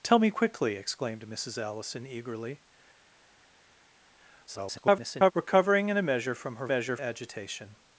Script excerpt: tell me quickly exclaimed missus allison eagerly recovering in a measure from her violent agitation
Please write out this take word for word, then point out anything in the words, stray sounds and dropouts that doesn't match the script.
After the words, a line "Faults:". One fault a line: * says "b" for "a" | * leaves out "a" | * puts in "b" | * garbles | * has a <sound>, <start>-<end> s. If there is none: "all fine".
tell me quickly exclaimed missus allison eagerly [garbled] recovering in a measure from her measure agitation
Faults:
* garbles
* says "measure" for "violent"